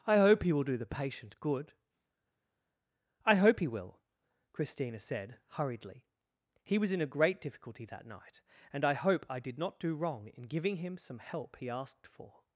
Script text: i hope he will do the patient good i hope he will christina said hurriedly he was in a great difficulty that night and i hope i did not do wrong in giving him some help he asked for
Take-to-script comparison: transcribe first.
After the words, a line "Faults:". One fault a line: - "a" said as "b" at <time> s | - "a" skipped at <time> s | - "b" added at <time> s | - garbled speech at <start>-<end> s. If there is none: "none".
i hope he will do the patient good i hope he will christina said hurriedly he was in a great difficulty that night and i hope i did not do wrong in giving him some help he asked for
Faults:
none